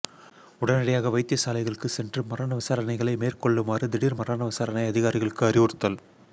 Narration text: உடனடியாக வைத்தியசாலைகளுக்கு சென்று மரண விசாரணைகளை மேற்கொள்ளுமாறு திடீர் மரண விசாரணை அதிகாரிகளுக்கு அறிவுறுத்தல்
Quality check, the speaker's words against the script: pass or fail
pass